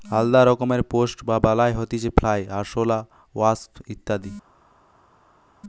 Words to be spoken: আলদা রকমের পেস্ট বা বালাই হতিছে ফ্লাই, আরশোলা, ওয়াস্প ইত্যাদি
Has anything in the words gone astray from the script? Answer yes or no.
no